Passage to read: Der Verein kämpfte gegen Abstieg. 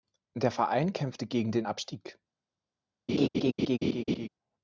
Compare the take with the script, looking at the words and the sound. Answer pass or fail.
fail